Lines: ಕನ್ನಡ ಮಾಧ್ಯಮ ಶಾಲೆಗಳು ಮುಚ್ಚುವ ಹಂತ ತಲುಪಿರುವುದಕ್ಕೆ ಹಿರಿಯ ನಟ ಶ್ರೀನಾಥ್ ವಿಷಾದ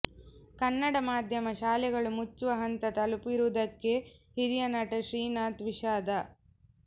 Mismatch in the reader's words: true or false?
false